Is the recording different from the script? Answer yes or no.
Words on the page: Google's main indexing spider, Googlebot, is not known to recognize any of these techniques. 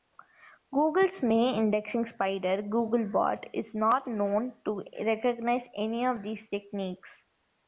no